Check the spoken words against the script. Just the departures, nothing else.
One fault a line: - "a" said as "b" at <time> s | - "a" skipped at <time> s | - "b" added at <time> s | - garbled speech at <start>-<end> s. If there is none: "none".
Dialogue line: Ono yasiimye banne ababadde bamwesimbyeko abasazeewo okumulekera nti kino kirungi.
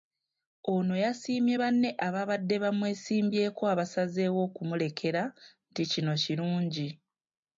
none